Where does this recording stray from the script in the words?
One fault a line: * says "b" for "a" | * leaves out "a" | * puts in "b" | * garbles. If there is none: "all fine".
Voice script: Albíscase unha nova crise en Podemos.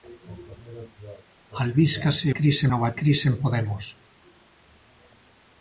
* says "crise" for "unha"